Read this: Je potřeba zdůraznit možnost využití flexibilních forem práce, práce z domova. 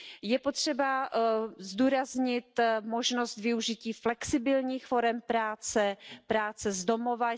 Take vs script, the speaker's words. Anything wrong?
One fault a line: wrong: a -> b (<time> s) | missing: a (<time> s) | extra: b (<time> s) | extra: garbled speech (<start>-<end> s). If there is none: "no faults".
no faults